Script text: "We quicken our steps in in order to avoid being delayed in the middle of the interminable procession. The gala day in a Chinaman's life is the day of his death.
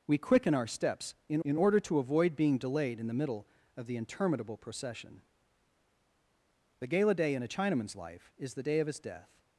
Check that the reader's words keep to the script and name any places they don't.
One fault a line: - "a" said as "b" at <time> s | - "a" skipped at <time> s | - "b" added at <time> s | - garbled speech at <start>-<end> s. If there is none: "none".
none